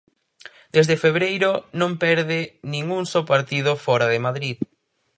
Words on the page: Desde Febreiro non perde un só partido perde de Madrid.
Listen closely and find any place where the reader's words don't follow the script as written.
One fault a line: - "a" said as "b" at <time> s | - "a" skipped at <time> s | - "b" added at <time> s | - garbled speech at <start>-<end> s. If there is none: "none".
- "nin" added at 2.7 s
- "perde" said as "fóra" at 3.9 s